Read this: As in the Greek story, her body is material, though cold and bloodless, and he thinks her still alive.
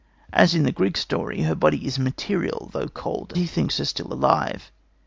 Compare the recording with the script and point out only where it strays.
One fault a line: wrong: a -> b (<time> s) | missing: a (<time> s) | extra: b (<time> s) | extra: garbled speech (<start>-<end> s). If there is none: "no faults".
missing: and bloodless and (3.4 s)